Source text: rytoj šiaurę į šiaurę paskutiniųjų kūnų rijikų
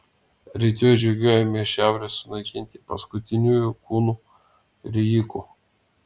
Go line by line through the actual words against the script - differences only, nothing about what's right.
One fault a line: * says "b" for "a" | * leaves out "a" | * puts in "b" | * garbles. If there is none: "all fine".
* says "žygiuojame" for "šiaurę"
* puts in "sunaikinti"